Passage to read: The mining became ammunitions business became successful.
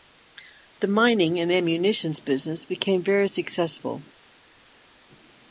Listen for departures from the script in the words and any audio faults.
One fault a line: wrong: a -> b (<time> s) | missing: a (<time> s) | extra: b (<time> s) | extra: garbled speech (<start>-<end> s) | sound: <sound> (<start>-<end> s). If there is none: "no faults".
wrong: became -> and (1.4 s)
extra: very (3.0 s)